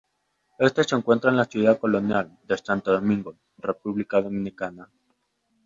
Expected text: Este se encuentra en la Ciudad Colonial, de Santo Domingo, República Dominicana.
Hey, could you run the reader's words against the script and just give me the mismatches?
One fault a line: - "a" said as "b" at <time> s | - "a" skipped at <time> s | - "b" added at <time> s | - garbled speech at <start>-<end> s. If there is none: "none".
none